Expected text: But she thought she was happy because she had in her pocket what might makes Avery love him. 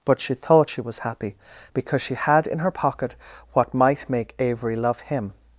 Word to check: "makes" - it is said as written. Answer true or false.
false